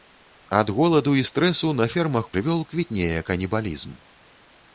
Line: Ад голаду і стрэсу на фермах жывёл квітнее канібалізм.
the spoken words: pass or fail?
pass